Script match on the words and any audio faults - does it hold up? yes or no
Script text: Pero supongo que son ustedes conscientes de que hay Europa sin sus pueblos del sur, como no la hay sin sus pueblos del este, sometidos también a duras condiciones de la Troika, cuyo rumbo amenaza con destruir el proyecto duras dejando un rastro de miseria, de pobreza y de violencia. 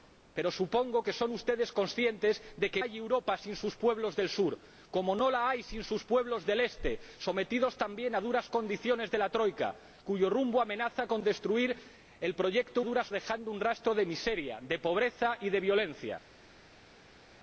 yes